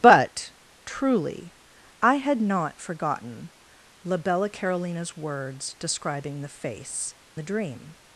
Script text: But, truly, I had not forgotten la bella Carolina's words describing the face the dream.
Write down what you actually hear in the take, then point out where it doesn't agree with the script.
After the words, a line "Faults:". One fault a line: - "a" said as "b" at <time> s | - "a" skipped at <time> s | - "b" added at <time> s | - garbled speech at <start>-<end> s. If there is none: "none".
But, truly, I had not forgotten la bella Carolina's words describing the face the dream.
Faults:
none